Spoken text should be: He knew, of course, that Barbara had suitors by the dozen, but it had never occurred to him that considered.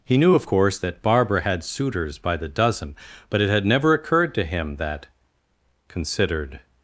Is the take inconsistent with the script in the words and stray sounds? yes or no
no